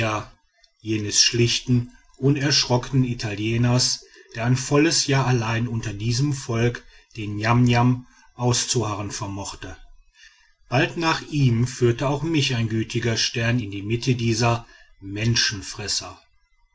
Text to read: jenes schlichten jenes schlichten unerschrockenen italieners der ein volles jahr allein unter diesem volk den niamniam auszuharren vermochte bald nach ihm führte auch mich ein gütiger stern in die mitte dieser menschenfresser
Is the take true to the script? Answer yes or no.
no